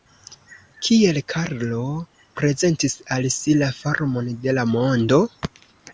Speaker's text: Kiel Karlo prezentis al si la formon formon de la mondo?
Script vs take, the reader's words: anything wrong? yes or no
yes